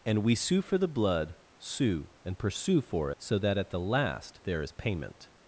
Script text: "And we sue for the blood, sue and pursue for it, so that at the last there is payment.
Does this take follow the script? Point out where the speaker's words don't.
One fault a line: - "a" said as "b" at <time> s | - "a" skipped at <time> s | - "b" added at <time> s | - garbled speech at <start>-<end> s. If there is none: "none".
- "it" skipped at 3.1 s